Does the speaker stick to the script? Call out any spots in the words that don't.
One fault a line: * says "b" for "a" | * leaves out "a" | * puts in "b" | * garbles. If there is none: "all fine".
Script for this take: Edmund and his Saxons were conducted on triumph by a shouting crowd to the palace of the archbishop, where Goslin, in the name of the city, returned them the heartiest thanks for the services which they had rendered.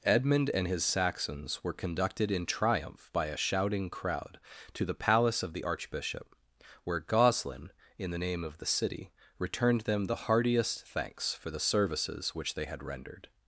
* says "in" for "on"